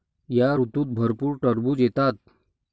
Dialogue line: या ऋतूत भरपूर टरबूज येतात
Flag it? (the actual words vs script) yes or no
no